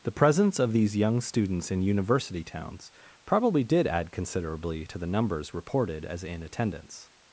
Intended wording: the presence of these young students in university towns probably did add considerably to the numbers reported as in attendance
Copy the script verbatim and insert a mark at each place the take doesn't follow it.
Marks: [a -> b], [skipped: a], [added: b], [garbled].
the presence of these young students in university towns probably did add considerably to the numbers reported as in attendance